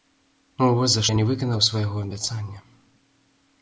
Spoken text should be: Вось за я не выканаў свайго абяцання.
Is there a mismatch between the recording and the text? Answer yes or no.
no